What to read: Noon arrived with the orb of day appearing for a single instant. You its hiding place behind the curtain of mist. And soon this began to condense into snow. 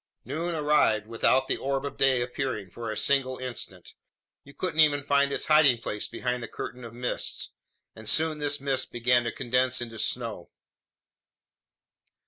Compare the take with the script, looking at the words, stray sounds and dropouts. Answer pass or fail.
fail